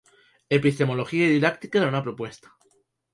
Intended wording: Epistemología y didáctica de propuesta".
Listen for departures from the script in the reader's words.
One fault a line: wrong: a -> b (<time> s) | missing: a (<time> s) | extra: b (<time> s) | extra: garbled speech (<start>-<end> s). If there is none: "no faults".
extra: una (1.9 s)